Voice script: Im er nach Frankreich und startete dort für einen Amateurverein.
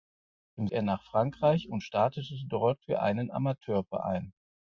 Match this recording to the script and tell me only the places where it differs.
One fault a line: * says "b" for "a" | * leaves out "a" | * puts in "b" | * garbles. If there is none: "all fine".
all fine